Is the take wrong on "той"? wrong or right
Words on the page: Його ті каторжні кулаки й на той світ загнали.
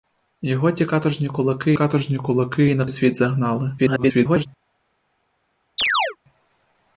wrong